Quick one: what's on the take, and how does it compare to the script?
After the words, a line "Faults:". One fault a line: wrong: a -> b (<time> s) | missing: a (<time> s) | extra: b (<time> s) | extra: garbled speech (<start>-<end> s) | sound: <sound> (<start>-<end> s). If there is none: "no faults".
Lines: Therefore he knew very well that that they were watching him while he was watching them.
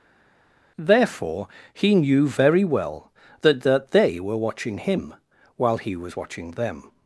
Therefore he knew very well that that they were watching him while he was watching them.
Faults:
no faults